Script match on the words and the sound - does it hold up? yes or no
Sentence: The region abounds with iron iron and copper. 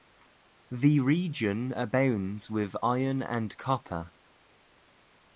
no